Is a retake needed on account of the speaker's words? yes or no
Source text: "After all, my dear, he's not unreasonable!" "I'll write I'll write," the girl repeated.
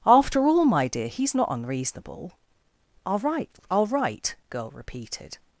yes